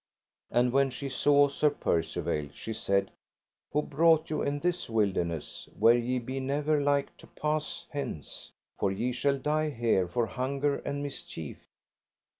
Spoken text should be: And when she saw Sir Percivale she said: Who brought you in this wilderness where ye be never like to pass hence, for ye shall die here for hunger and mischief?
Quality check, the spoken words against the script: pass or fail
pass